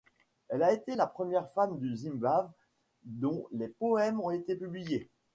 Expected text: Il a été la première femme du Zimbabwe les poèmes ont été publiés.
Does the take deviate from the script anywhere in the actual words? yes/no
yes